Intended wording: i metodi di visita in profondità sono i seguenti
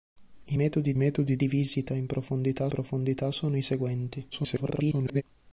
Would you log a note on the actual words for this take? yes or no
yes